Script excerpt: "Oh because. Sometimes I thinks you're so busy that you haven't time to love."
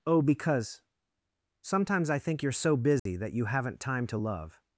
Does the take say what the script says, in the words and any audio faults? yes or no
no